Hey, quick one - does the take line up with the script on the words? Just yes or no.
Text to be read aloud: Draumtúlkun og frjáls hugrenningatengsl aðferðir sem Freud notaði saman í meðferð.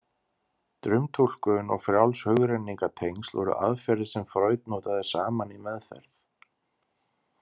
no